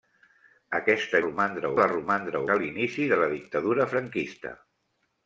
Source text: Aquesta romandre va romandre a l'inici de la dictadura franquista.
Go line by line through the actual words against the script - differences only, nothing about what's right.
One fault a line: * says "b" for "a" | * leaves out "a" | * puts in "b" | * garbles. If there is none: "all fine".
all fine